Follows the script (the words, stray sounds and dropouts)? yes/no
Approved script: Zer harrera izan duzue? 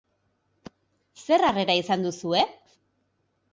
yes